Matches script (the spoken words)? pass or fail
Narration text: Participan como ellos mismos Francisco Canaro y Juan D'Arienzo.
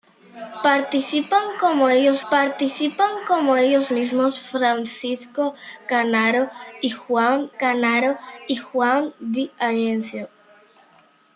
fail